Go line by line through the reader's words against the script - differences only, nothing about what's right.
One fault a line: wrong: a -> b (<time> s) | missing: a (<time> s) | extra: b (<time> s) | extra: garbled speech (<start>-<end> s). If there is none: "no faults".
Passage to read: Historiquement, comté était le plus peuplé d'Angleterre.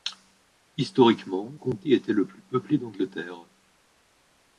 no faults